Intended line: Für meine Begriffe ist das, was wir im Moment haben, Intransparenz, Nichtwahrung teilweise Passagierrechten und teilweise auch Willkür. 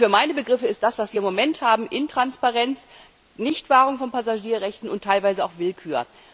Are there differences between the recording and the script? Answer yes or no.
yes